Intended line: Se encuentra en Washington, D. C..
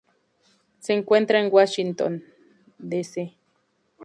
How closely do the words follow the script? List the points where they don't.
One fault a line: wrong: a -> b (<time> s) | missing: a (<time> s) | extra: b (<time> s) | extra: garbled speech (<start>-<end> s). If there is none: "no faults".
no faults